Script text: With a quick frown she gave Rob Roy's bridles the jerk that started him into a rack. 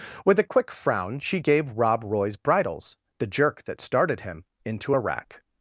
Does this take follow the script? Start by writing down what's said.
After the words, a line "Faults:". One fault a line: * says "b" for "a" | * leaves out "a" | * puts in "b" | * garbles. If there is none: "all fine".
With a quick frown she gave Rob Roy's bridles the jerk that started him into a rack.
Faults:
all fine